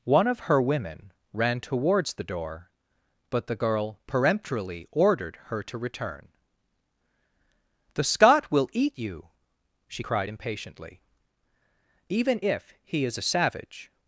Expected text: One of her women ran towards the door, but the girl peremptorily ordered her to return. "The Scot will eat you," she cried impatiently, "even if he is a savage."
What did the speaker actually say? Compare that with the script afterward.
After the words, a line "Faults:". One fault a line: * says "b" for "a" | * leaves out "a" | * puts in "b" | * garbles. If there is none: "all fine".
One of her women ran towards the door, but the girl peremptorily ordered her to return. "The Scot will eat you," she cried impatiently, "even if he is a savage."
Faults:
all fine